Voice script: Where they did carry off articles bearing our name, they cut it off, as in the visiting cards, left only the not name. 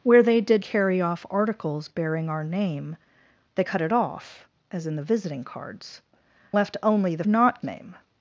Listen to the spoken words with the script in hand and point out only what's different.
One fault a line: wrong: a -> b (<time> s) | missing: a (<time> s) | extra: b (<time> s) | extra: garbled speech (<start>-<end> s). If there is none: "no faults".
no faults